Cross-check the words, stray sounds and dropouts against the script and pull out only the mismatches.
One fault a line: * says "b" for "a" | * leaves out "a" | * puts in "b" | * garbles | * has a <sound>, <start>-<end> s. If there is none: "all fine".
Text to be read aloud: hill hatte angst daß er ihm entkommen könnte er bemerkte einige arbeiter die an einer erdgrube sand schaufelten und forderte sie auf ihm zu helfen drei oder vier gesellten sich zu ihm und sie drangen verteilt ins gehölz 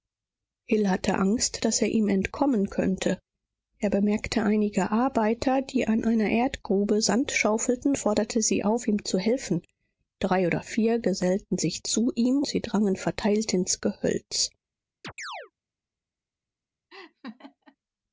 * leaves out "und"
* leaves out "und"
* has a chirp, 15.0-15.5 s
* has a laugh, 16.9-17.8 s